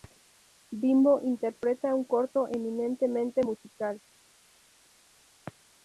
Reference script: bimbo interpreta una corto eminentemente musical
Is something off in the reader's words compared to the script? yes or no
yes